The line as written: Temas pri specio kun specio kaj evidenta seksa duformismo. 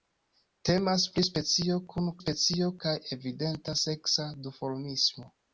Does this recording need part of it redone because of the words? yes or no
no